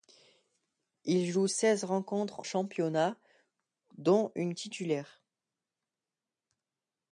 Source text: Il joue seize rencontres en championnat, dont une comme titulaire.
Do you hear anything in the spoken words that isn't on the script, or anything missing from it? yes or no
yes